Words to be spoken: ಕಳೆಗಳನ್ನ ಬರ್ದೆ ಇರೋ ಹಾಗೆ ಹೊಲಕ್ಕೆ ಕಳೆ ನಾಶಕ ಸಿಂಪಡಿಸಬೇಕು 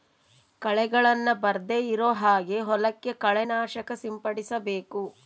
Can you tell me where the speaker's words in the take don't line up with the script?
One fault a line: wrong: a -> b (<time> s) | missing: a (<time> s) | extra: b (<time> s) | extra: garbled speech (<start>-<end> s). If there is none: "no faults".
no faults